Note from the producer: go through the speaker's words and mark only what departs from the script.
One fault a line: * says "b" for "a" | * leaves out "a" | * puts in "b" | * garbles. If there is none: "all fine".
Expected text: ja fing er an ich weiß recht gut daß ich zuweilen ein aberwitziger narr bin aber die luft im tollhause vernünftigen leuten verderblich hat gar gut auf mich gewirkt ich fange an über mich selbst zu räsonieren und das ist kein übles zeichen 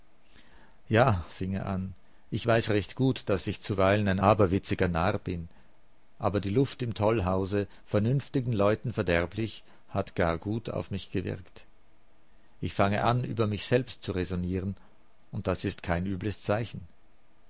all fine